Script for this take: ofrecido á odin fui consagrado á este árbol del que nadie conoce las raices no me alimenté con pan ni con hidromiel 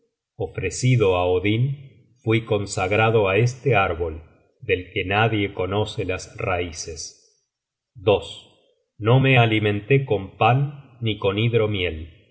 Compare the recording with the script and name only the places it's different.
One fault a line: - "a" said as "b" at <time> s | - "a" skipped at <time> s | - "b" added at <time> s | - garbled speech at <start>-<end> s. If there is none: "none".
none